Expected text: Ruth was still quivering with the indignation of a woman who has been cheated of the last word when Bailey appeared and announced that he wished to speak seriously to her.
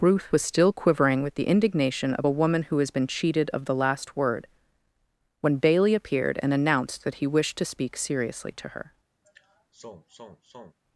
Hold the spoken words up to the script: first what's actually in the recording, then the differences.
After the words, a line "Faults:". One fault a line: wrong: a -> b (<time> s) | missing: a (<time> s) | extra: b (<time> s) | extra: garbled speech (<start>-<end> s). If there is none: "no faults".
Ruth was still quivering with the indignation of a woman who has been cheated of the last word when Bailey appeared and announced that he wished to speak seriously to her.
Faults:
no faults